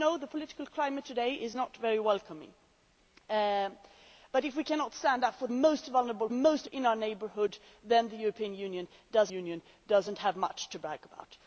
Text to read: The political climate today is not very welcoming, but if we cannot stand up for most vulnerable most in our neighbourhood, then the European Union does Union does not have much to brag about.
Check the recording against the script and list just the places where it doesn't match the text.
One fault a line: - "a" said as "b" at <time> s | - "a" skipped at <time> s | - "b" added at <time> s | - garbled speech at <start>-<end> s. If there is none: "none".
none